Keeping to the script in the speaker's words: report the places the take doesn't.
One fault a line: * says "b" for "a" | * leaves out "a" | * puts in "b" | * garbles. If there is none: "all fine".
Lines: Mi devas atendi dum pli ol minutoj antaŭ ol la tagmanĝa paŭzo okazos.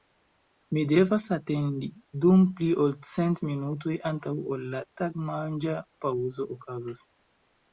* puts in "cent"